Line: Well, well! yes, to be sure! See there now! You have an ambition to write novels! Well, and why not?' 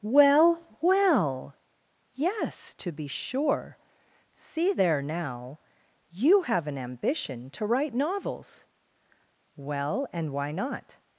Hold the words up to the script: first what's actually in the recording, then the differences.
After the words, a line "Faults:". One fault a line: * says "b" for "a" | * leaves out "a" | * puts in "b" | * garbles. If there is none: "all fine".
Well, well! yes, to be sure! See there now! You have an ambition to write novels! Well, and why not?'
Faults:
all fine